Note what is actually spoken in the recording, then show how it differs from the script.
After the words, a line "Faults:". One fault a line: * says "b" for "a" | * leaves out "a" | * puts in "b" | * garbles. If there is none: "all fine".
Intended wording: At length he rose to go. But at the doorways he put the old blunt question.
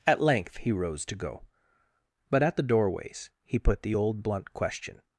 At length he rose to go. But at the doorways he put the old blunt question.
Faults:
all fine